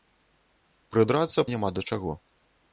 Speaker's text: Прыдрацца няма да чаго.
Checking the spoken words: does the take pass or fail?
pass